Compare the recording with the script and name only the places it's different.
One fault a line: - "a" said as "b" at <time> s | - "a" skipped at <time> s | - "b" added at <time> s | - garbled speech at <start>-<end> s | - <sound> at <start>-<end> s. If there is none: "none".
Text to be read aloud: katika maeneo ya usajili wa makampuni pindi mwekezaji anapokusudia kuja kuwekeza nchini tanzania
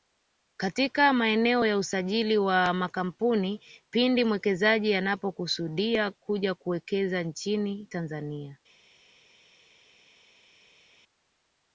none